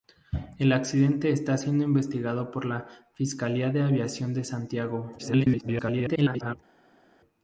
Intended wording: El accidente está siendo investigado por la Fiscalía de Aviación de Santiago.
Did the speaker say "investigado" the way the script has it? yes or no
yes